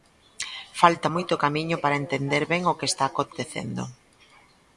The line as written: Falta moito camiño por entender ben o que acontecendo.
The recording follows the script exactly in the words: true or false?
false